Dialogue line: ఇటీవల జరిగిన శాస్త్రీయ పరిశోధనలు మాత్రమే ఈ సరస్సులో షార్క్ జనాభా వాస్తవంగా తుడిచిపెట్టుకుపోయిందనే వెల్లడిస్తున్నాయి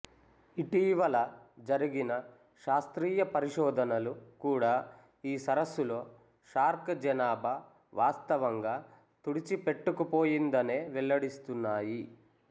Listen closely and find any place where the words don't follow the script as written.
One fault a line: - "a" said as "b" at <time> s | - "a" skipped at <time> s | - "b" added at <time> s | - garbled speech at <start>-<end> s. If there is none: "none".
- "మాత్రమే" said as "కూడా" at 4.4 s